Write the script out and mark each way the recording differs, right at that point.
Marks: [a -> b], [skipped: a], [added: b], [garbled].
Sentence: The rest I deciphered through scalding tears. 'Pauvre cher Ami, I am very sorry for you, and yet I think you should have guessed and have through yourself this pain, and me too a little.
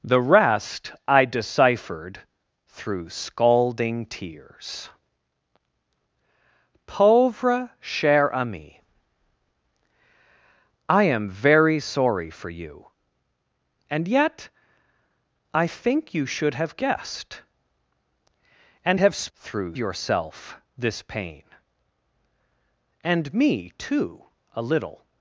The rest I deciphered through scalding tears. 'Pauvre cher Ami, I am very sorry for you, and yet I think you should have guessed and have through yourself this pain, and me too a little.